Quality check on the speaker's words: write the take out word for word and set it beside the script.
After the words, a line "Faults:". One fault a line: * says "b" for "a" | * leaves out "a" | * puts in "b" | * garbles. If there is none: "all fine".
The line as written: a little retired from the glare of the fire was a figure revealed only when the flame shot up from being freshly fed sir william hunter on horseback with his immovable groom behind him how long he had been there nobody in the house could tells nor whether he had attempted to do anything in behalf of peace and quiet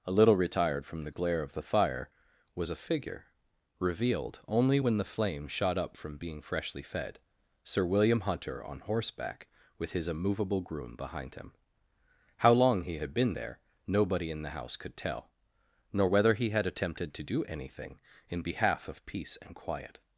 a little retired from the glare of the fire was a figure revealed only when the flame shot up from being freshly fed sir william hunter on horseback with his immovable groom behind him how long he had been there nobody in the house could tell nor whether he had attempted to do anything in behalf of peace and quiet
Faults:
* says "tell" for "tells"